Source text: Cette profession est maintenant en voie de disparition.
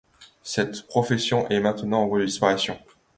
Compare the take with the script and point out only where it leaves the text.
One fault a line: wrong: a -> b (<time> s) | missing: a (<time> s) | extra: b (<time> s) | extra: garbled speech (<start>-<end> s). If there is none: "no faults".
no faults